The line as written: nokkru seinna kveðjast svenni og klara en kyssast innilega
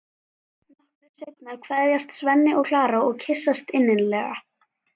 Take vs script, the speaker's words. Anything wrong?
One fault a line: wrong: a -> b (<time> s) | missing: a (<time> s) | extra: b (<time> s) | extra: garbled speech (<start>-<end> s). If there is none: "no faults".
wrong: en -> og (3.1 s)